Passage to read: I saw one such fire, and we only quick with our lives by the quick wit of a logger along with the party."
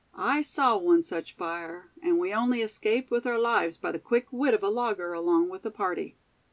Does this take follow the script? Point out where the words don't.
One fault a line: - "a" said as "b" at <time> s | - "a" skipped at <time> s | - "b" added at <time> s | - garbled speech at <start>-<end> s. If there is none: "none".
- "quick" said as "escaped" at 2.6 s